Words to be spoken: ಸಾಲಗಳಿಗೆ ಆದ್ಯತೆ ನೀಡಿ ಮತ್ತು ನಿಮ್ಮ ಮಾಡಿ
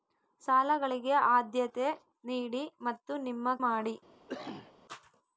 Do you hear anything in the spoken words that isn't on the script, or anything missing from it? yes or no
no